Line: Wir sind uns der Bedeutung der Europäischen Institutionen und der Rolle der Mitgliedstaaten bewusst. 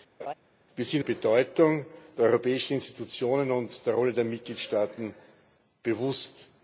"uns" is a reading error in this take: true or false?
true